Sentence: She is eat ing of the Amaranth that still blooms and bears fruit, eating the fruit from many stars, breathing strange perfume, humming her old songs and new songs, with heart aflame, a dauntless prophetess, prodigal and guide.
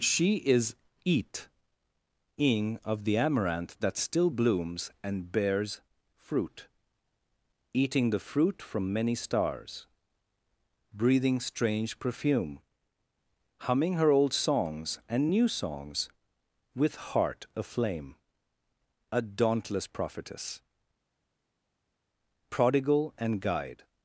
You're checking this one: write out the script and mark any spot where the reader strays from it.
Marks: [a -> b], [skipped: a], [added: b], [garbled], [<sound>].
She is eat ing of the Amaranth that still blooms and bears fruit, eating the fruit from many stars, breathing strange perfume, humming her old songs and new songs, with heart aflame, a dauntless prophetess, prodigal and guide.